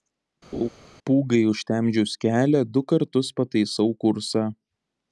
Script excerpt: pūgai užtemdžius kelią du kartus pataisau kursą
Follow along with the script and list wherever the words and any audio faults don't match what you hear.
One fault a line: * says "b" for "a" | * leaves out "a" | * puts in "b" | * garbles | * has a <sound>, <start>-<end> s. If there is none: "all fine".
* has a laugh, 0.5-0.7 s